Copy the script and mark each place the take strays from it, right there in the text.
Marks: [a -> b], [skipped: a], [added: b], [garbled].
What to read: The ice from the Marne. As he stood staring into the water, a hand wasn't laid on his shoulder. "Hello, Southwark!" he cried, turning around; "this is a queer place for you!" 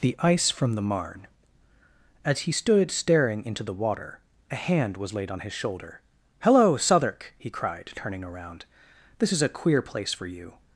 The ice from the Marne. As he stood staring into the water, a hand [wasn't -> was] laid on his shoulder. "Hello, Southwark!" he cried, turning around; "this is a queer place for you!"